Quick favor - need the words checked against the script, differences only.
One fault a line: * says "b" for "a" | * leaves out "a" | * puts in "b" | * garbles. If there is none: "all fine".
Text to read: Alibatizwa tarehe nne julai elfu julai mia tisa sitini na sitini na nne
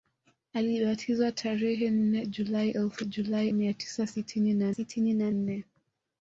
all fine